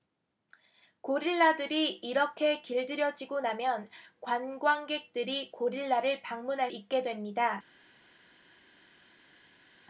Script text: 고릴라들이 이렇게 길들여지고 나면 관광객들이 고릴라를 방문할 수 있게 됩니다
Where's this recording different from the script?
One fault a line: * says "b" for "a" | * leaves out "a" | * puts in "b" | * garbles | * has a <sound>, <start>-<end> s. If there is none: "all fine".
* leaves out "수"